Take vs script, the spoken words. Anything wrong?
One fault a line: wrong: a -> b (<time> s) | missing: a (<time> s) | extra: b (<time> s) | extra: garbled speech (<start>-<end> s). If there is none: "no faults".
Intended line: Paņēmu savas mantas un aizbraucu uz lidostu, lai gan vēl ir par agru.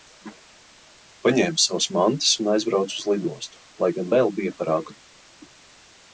wrong: ir -> bija (4.4 s)